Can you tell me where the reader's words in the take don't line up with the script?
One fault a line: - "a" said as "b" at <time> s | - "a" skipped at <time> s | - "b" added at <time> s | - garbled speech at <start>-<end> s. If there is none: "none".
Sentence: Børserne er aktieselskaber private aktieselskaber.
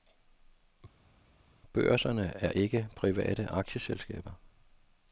- "aktieselskaber" said as "ikke" at 2.5 s